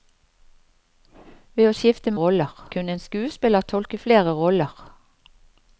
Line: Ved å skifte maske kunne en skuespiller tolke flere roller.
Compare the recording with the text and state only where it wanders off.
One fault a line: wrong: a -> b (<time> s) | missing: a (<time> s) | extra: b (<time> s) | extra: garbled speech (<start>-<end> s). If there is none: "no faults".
wrong: maske -> roller (2.2 s)